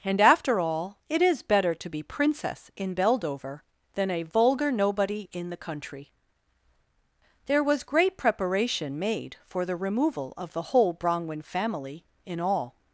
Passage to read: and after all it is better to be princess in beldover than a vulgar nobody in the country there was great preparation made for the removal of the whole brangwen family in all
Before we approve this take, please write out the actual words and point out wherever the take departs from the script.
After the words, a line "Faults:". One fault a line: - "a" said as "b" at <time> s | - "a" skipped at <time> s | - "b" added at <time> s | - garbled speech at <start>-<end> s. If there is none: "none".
and after all it is better to be princess in beldover than a vulgar nobody in the country there was great preparation made for the removal of the whole brangwen family in all
Faults:
none